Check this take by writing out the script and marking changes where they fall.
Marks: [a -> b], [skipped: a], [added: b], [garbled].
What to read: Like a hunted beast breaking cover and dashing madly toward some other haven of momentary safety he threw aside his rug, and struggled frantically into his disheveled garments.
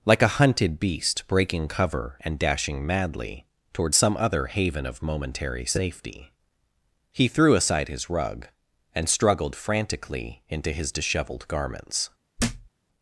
Like a hunted beast breaking cover and dashing madly toward some other haven of momentary safety he threw aside his rug, and struggled frantically into his disheveled garments.